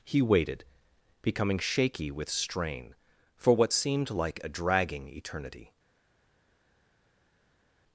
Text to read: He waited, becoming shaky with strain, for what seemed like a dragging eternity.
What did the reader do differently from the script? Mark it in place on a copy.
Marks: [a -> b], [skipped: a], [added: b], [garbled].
He waited, becoming shaky with strain, for what seemed like a dragging eternity.